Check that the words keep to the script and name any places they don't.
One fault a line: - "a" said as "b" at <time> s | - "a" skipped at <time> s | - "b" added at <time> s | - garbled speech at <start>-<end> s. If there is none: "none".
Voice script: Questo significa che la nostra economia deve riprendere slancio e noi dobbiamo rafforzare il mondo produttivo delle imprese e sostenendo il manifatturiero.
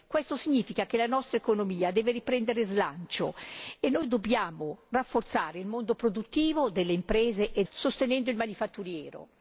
none